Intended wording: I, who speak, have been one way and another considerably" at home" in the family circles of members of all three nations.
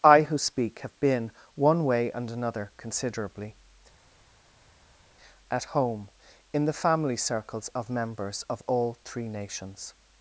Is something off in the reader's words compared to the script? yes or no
no